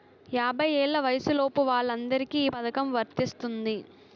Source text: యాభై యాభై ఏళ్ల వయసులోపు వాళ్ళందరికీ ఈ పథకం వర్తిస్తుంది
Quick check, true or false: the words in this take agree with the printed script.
false